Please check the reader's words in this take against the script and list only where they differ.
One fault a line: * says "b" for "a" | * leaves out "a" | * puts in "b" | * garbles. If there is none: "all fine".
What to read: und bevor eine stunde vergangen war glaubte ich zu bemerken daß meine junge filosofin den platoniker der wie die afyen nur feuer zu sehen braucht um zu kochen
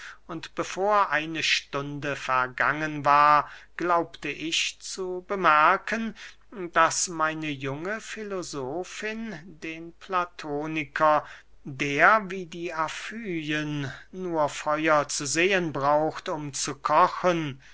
all fine